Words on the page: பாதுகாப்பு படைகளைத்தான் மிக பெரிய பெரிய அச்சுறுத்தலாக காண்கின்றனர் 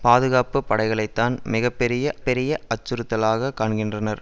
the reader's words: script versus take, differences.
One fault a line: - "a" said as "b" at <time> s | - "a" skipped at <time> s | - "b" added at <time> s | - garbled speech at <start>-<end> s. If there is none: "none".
none